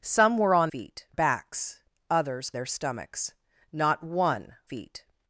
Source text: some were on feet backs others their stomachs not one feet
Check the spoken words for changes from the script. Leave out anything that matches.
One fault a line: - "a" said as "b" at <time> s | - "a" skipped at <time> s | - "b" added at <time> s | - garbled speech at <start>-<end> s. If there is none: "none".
none